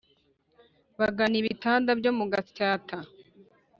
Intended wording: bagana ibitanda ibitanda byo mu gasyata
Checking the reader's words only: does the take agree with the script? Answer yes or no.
no